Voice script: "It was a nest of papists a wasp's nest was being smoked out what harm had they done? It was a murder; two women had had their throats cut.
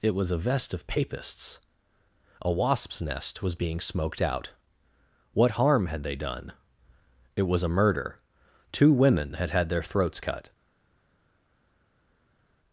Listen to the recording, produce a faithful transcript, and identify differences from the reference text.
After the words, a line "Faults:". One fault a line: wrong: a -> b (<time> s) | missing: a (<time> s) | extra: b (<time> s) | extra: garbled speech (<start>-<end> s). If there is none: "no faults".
"It was a vest of papists a wasp's nest was being smoked out what harm had they done? It was a murder; two women had had their throats cut.
Faults:
wrong: nest -> vest (0.4 s)